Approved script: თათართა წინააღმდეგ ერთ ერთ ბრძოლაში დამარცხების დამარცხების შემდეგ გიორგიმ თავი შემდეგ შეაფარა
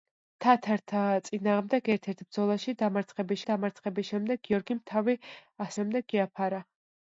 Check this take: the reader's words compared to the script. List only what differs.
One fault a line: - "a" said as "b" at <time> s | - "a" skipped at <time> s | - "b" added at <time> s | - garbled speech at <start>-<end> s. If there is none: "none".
none